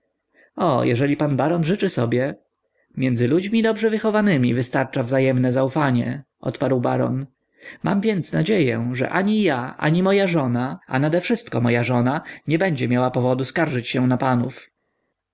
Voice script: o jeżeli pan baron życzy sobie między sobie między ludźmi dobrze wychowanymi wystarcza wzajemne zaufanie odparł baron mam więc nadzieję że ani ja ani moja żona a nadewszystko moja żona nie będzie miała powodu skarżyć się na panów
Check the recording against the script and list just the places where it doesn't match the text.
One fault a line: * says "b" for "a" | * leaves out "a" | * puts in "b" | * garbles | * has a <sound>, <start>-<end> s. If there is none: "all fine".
* leaves out "sobie między"